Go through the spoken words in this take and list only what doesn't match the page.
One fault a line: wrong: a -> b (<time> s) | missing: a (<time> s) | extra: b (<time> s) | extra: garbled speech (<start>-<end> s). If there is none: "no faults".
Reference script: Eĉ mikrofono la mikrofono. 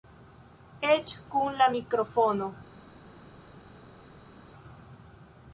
wrong: mikrofono -> kun (1.4 s)